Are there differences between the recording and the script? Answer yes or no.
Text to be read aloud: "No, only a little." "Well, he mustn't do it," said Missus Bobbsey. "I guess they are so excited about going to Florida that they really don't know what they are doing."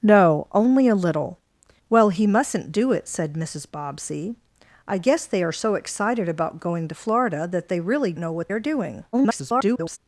yes